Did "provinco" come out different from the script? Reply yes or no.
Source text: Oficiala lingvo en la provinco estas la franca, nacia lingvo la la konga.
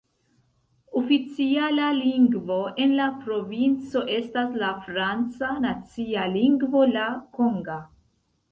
no